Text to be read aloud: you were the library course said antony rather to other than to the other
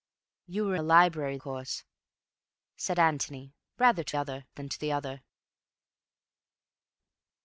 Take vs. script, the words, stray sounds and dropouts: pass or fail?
pass